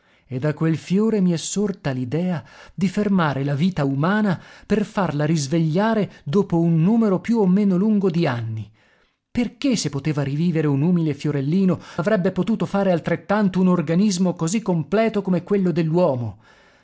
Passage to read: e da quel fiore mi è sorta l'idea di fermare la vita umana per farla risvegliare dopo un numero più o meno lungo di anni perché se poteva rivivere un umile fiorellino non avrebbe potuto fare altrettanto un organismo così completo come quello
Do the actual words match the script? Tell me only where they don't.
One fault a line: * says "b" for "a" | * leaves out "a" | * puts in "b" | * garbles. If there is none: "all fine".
* leaves out "non"